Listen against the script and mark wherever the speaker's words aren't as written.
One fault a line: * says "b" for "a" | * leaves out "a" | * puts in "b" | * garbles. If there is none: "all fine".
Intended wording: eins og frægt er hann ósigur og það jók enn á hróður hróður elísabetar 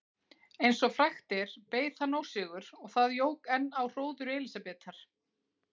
* puts in "beið"
* leaves out "hróður"